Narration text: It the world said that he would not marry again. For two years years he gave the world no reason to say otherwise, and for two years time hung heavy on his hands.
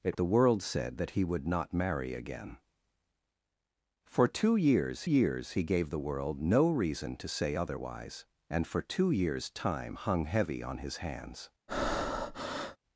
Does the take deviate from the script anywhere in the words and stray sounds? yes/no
yes